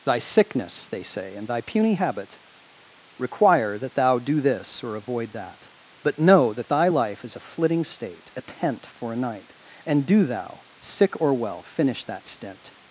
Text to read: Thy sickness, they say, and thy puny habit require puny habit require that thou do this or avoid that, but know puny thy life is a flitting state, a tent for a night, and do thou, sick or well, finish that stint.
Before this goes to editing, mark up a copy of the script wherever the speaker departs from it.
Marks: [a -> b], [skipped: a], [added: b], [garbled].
Thy sickness, they say, and thy puny habit require [skipped: puny habit require] that thou do this or avoid that, but know [puny -> that] thy life is a flitting state, a tent for a night, and do thou, sick or well, finish that stint.